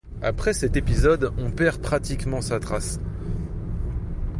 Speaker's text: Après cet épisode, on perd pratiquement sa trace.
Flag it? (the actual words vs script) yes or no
no